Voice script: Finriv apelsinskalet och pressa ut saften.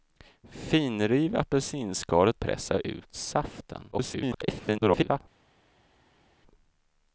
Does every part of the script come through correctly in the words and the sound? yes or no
no